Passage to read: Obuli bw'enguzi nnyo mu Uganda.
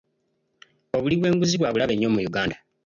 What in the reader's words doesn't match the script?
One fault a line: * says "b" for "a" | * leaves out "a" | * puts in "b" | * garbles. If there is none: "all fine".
* puts in "bwa bulabe"